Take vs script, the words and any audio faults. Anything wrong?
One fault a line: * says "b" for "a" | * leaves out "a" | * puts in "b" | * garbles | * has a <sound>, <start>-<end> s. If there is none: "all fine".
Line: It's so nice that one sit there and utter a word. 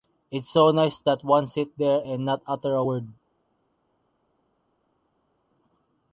* puts in "not"